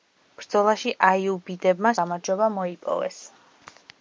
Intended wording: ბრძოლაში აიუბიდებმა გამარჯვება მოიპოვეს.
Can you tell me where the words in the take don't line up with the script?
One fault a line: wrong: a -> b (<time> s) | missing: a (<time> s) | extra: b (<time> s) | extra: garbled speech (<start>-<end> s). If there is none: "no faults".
no faults